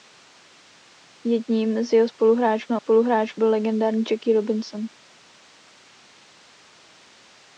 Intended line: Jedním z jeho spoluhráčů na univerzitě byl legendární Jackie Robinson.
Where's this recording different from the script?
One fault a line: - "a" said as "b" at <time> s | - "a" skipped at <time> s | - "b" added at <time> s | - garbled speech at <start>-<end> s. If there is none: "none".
- "univerzitě" said as "spoluhráčů" at 2.7 s